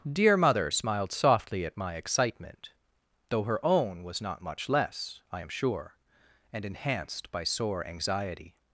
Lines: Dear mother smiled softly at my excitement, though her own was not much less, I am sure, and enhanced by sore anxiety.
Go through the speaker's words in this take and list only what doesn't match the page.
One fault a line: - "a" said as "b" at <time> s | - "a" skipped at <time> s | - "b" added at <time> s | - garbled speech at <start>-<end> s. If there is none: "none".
none